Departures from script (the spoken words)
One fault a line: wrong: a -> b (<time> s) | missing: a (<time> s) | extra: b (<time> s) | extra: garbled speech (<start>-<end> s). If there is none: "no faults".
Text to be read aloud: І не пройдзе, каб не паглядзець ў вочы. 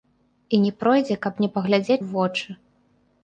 no faults